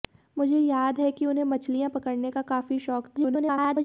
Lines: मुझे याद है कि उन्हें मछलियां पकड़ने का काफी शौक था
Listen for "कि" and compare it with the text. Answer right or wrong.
right